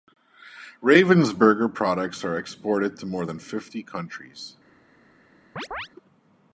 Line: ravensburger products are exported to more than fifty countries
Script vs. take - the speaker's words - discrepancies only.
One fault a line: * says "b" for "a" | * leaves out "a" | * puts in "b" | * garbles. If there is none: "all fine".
all fine